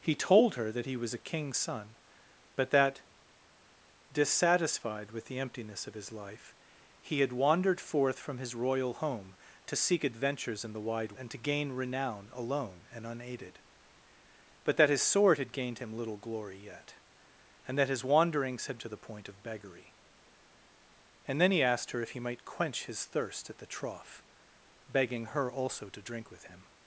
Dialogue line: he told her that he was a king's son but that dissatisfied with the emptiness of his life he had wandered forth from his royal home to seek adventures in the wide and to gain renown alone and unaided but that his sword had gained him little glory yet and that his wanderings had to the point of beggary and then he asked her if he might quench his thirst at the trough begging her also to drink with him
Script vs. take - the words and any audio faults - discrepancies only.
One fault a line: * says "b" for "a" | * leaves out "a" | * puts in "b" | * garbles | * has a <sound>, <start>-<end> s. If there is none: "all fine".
all fine